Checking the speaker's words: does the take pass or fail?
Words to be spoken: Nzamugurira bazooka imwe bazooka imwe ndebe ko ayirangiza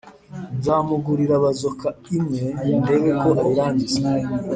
fail